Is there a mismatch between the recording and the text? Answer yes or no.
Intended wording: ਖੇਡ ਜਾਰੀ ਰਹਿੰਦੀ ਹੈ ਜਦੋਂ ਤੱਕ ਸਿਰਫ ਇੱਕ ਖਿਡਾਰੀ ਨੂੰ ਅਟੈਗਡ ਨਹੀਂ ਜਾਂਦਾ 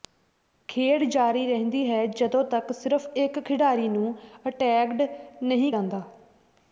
no